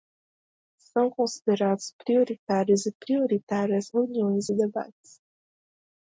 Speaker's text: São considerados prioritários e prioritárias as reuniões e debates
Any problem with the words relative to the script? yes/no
yes